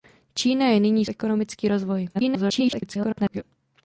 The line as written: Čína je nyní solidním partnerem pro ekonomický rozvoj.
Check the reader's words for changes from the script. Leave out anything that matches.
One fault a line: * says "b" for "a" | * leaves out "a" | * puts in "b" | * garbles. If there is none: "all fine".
* leaves out "solidním partnerem pro"
* garbles